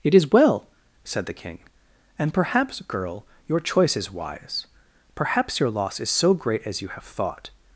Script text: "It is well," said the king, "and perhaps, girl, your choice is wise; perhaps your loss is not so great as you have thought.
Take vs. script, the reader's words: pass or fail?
fail